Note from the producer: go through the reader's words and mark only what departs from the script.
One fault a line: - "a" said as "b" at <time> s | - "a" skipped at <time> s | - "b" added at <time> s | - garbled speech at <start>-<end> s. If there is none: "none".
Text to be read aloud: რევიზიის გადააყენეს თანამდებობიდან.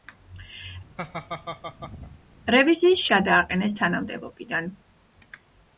none